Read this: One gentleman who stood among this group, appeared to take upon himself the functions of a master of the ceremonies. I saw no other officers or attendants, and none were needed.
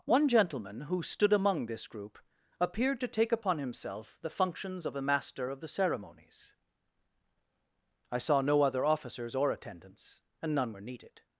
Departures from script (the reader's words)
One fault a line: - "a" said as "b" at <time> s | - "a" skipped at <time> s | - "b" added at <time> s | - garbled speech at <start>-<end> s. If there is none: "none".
none